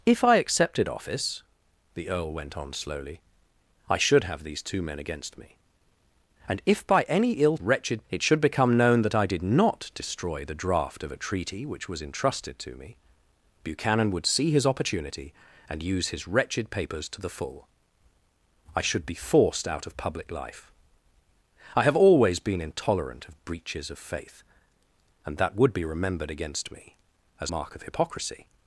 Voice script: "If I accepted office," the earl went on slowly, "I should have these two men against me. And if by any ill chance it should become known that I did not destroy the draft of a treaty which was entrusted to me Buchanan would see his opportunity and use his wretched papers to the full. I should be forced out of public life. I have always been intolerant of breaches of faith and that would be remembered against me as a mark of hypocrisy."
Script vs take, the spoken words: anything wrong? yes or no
yes